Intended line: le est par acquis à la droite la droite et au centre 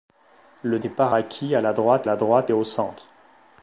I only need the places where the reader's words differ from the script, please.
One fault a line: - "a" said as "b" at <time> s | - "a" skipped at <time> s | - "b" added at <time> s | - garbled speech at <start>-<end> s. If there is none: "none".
none